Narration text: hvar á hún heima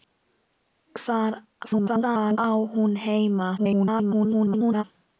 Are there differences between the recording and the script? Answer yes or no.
yes